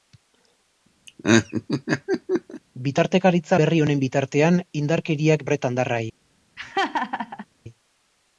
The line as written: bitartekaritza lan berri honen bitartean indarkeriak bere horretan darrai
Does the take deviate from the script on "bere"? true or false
true